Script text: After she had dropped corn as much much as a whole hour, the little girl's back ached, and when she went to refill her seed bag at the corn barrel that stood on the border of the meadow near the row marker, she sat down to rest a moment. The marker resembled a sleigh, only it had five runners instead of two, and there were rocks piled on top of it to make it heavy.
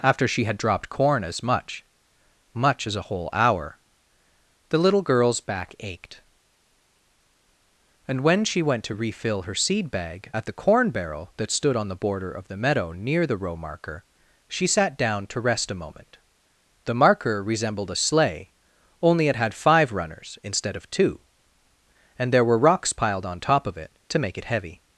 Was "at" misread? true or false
false